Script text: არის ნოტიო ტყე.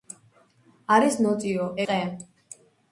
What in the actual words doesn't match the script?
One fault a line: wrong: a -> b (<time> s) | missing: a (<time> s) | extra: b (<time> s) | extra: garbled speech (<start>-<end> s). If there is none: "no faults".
no faults